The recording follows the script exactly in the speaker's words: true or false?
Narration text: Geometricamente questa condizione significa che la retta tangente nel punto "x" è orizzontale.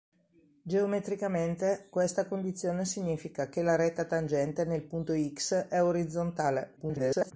false